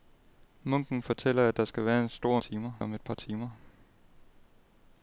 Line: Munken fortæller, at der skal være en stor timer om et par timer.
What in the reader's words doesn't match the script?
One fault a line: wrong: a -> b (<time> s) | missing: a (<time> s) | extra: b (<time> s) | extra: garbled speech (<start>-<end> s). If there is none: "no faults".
no faults